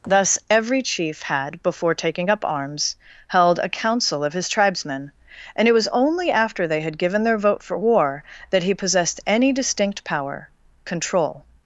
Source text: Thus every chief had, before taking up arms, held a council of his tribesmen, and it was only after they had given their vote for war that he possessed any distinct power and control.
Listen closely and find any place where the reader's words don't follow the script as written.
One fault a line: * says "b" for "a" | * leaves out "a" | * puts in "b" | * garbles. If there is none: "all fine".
* leaves out "and"